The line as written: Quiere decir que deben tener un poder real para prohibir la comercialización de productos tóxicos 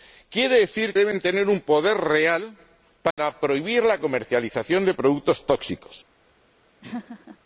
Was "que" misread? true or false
true